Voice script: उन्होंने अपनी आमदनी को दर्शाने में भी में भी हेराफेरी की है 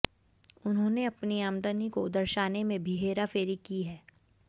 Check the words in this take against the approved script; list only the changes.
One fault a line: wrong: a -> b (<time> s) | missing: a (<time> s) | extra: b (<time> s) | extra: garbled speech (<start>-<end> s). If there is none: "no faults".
missing: में भी (3.0 s)